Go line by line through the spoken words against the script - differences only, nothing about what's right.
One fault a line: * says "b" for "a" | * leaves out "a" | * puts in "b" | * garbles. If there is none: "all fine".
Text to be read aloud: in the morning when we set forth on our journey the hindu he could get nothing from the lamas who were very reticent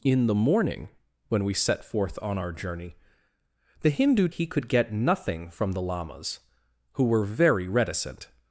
all fine